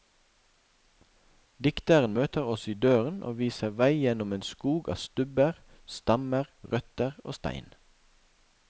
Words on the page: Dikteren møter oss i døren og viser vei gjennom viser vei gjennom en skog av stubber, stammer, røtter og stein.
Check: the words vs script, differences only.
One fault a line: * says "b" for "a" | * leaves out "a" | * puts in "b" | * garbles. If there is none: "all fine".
* leaves out "viser vei gjennom"